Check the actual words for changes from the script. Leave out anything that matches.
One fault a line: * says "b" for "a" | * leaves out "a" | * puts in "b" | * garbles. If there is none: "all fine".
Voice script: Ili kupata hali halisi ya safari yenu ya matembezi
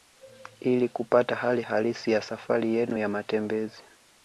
all fine